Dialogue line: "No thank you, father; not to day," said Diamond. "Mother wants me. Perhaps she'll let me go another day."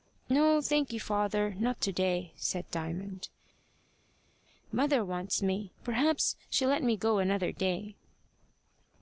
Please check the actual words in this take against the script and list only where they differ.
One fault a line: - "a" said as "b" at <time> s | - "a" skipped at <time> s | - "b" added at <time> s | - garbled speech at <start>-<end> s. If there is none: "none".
none